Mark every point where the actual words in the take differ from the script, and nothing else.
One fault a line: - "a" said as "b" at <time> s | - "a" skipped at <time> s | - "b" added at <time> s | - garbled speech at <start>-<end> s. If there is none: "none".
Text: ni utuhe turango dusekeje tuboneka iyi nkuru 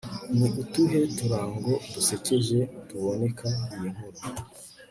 none